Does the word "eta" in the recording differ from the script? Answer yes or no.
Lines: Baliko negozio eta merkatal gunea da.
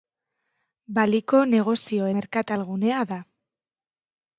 yes